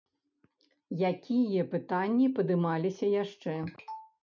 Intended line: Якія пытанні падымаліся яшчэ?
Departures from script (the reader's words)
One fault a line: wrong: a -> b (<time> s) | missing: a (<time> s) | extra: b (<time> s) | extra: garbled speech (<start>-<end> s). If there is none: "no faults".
no faults